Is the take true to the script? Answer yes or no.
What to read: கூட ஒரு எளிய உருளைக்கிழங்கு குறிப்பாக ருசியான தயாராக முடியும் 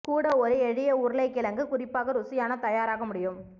yes